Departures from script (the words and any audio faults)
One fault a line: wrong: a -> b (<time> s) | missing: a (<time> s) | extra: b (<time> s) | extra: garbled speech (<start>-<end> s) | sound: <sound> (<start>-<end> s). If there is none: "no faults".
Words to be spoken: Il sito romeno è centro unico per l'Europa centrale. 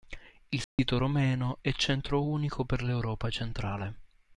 sound: dropout (0.6-0.8 s)